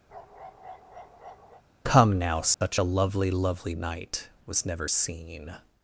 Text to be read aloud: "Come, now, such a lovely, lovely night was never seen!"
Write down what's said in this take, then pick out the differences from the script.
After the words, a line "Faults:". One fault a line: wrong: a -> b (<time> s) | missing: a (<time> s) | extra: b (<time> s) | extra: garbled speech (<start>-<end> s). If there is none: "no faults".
"Come, now, such a lovely, lovely night was never seen!"
Faults:
no faults